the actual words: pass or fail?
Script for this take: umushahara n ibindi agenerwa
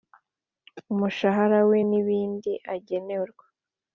fail